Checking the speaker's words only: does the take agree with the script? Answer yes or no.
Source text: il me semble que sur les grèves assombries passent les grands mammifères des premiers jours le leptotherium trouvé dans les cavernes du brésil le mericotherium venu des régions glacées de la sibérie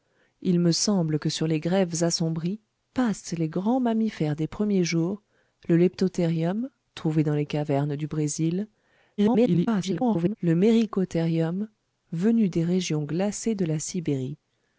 no